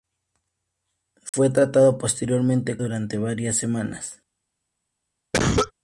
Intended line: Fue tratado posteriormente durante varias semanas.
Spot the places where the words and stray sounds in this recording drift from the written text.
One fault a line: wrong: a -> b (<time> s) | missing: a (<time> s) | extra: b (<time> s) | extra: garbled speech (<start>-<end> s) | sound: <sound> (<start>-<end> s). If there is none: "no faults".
sound: dropout (1.3-1.3 s)
sound: cough (5.3-5.7 s)